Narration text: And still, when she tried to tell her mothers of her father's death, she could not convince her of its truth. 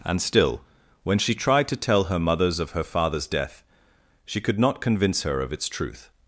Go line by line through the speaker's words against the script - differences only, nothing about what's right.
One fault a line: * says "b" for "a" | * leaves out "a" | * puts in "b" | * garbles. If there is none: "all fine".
all fine